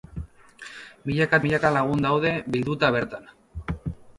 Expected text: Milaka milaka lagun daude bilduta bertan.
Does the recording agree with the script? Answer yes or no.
yes